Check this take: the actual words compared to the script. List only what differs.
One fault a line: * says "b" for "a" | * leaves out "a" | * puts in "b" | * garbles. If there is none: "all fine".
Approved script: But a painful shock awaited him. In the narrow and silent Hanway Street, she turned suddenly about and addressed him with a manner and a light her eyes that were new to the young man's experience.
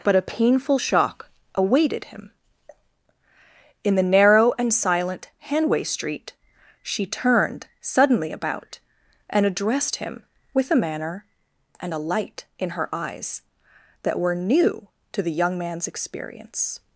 * puts in "in"